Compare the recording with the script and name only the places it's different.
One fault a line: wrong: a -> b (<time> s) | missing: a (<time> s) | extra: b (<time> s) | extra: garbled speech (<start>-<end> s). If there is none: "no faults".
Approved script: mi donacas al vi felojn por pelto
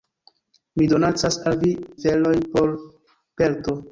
no faults